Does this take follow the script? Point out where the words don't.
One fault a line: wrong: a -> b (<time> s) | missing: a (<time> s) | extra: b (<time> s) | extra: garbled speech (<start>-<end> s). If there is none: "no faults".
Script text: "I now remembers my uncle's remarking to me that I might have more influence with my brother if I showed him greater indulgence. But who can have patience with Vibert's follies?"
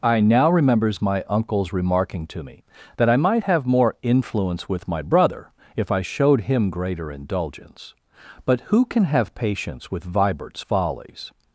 no faults